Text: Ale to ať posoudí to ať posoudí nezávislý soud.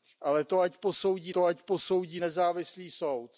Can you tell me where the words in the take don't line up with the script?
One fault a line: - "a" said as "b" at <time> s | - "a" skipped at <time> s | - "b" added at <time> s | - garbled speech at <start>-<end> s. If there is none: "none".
none